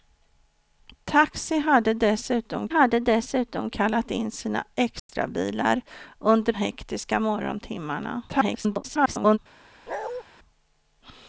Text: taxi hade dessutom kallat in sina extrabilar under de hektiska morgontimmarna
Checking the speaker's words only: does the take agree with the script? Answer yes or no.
no